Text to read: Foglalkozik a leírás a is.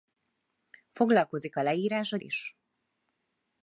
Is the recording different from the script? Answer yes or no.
no